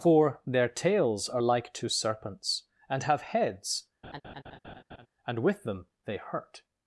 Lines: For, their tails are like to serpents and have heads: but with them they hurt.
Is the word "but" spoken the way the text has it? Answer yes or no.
no